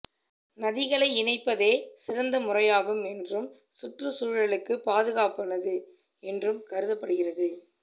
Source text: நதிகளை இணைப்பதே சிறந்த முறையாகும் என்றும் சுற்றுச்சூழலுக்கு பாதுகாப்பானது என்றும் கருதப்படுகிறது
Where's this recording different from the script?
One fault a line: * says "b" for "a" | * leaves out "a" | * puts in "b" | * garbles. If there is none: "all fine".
all fine